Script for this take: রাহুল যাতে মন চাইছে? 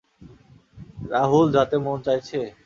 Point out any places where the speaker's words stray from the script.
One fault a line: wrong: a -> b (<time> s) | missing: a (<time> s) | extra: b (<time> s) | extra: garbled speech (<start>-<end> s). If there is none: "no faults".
no faults